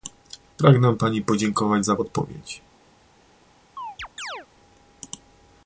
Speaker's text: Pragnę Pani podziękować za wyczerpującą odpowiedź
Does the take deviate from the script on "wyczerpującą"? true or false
true